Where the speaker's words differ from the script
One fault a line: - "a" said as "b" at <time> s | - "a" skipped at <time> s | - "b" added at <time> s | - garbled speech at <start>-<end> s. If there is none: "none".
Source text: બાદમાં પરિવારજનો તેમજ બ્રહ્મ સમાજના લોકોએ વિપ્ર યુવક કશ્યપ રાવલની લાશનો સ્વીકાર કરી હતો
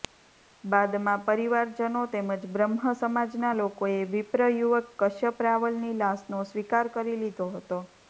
- "લીધો" added at 7.2 s